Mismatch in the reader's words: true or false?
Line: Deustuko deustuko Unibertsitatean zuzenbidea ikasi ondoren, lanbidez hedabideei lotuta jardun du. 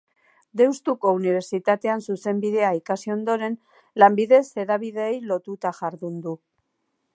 true